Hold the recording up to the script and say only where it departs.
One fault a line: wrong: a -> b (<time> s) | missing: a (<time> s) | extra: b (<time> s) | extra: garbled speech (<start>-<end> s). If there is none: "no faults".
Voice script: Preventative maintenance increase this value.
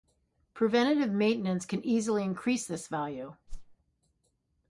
extra: can easily (1.6 s)